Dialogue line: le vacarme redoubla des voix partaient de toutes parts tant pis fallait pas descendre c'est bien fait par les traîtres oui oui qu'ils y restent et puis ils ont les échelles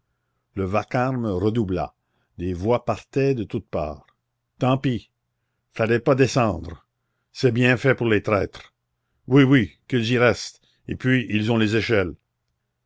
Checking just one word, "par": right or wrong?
wrong